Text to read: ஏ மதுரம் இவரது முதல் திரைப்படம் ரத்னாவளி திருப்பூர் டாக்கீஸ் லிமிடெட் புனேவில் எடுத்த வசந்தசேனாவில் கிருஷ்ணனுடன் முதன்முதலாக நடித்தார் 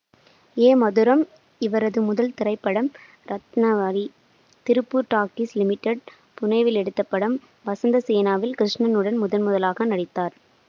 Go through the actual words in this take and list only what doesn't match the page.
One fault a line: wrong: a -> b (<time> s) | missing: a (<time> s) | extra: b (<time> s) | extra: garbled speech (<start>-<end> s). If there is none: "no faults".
extra: படம் (7.0 s)